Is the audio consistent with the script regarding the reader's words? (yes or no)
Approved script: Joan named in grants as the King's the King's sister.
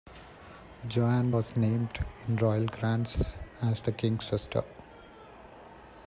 no